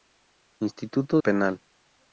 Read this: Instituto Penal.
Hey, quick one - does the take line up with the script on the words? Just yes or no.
yes